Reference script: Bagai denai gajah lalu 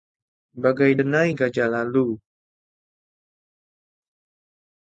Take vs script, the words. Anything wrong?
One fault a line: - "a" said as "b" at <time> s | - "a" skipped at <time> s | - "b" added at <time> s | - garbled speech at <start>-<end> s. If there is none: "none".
none